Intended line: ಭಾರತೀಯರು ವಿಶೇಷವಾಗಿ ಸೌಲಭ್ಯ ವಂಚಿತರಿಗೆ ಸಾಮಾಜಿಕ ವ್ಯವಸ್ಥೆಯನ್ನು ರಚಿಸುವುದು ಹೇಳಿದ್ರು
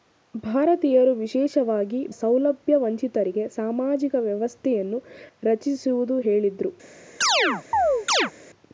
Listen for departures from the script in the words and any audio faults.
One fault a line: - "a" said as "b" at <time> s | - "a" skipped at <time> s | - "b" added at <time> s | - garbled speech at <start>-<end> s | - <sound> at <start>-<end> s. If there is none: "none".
- chirp at 7.2-8.3 s